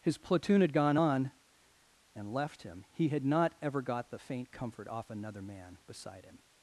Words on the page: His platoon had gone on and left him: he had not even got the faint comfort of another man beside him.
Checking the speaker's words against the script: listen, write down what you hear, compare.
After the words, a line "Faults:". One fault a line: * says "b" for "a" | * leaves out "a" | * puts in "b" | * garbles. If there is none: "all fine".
His platoon had gone on and left him: he had not ever got the faint comfort off another man beside him.
Faults:
* says "ever" for "even"
* says "off" for "of"